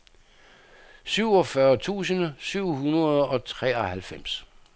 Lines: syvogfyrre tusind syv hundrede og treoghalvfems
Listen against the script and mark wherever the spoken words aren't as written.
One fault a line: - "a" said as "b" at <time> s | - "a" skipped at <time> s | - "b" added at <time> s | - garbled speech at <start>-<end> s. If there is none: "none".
none